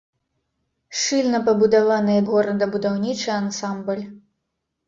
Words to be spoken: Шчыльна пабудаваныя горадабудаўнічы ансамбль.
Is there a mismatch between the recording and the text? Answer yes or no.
no